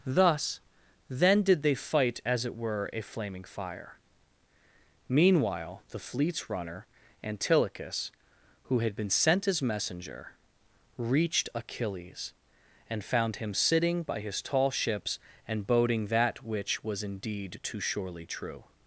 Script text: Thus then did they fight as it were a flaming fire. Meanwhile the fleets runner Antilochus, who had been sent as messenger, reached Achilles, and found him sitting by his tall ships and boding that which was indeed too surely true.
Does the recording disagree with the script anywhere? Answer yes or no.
no